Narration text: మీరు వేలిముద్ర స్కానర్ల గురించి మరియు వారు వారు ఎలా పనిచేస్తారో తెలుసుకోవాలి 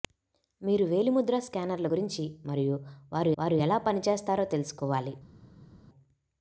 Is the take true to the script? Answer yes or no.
yes